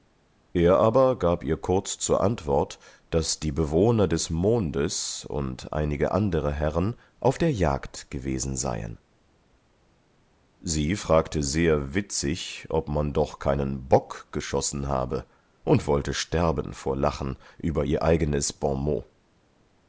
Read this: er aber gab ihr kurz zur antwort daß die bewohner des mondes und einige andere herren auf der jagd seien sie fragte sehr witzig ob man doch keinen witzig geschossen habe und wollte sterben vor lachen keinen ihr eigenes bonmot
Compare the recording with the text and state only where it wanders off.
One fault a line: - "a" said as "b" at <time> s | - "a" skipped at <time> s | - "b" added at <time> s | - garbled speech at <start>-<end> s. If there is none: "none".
- "gewesen" added at 8.1 s
- "witzig" said as "bock" at 13.9 s
- "keinen" said as "über" at 17.6 s